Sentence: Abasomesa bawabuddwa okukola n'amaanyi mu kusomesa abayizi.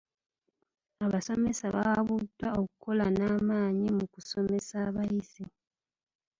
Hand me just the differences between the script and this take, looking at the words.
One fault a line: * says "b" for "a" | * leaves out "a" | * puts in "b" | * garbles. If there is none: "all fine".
all fine